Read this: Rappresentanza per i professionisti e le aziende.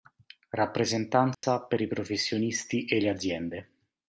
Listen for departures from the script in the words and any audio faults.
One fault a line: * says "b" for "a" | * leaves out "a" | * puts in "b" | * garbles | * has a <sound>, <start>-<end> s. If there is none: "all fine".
* has a dropout, 1.3-1.4 s